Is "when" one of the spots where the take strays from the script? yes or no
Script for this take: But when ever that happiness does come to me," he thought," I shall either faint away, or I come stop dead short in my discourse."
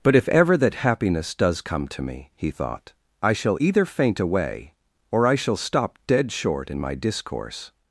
yes